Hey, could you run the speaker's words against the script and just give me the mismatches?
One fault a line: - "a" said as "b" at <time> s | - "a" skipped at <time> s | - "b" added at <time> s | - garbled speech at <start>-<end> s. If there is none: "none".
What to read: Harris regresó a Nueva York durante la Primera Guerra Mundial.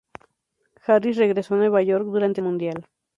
- "la Primera Guerra" skipped at 2.4 s